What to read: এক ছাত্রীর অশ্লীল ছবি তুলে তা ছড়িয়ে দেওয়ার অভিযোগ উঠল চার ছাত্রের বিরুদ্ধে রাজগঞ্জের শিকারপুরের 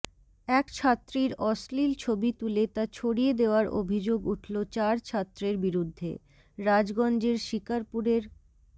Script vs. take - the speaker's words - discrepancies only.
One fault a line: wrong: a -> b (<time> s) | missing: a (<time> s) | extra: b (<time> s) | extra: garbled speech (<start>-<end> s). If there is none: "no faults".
no faults